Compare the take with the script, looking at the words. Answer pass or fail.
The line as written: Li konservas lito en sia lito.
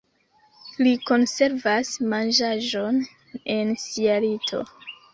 fail